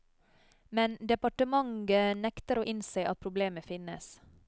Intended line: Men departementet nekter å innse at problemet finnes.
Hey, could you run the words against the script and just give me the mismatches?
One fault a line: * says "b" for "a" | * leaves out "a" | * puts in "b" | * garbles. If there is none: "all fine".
all fine